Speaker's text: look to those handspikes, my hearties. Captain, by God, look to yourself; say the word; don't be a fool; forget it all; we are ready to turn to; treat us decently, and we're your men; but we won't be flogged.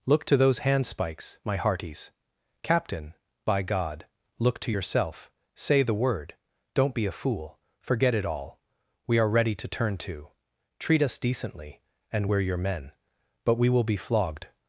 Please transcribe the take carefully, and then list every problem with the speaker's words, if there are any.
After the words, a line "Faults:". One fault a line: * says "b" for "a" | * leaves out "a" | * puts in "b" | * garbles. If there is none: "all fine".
look to those handspikes, my hearties. Captain, by God, look to yourself; say the word; don't be a fool; forget it all; we are ready to turn to; treat us decently, and we're your men; but we will be flogged.
Faults:
* says "will" for "won't"